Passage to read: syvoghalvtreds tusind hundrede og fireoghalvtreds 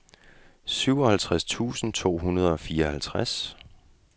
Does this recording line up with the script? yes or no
no